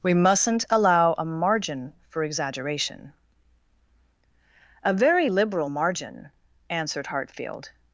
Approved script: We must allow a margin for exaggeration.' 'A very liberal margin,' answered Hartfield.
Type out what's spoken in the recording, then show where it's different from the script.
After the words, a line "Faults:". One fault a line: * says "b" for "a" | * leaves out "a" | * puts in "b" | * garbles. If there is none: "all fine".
We mustn't allow a margin for exaggeration.' 'A very liberal margin,' answered Hartfield.
Faults:
* says "mustn't" for "must"